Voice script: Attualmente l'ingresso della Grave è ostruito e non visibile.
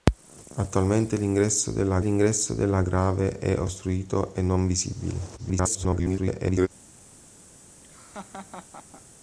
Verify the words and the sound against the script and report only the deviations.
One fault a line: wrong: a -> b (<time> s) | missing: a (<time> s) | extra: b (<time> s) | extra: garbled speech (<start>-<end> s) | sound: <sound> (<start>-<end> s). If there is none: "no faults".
extra: l'ingresso della (2.0 s)
extra: garbled speech (5.4-6.7 s)
sound: laugh (7.8-9.0 s)